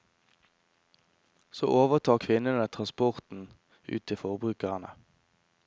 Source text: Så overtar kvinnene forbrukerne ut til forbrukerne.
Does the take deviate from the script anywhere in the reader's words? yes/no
yes